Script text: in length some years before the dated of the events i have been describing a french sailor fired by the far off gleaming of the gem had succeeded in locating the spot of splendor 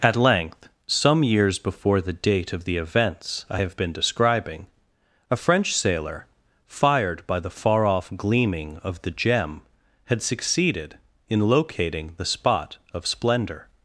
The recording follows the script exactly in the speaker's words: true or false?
false